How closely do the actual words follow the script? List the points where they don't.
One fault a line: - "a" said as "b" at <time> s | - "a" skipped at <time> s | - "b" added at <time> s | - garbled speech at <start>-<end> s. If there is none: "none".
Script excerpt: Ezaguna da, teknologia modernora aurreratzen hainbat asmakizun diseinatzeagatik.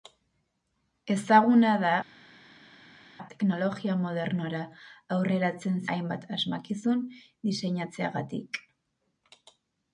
none